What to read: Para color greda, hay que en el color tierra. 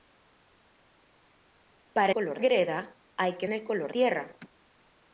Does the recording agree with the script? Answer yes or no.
yes